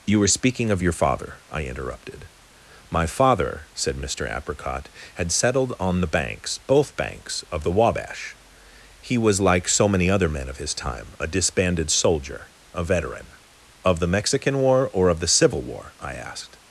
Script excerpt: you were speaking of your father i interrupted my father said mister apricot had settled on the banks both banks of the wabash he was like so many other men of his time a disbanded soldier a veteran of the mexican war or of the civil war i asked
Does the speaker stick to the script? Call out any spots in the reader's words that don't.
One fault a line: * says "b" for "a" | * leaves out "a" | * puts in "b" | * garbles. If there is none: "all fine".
all fine